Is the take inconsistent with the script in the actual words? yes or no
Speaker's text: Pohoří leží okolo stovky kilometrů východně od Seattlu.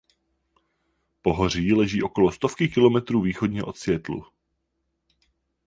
no